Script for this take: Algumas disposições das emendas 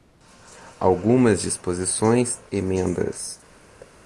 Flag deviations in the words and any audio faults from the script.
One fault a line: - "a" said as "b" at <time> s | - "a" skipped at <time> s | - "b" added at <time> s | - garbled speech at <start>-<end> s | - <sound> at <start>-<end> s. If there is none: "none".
- "das" skipped at 2.4 s
- thud at 3.8-4.0 s